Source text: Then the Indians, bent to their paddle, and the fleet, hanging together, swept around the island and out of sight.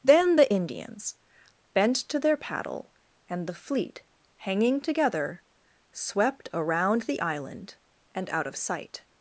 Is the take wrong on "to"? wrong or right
right